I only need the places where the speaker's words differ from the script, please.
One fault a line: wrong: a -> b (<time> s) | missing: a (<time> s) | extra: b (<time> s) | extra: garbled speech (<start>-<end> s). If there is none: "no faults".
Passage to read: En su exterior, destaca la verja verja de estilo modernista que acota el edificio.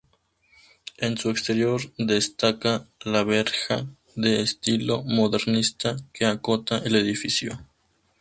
missing: verja (3.9 s)